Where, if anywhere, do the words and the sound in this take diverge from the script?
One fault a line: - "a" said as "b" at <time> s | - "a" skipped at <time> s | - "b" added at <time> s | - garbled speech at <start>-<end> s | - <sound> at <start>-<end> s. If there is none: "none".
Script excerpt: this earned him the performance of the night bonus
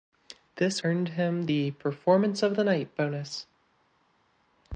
none